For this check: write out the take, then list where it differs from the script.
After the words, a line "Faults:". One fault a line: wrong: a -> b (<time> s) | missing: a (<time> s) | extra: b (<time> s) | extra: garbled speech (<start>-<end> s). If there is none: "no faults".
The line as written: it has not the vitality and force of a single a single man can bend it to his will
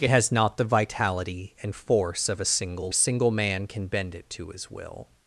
it has not the vitality and force of a single a single man can bend it to his will
Faults:
no faults